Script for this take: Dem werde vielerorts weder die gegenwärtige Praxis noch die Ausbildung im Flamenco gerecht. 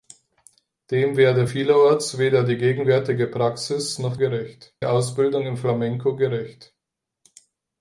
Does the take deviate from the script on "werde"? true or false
false